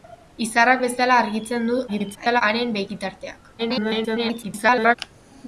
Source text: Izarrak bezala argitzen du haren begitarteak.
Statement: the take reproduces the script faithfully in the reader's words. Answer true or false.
false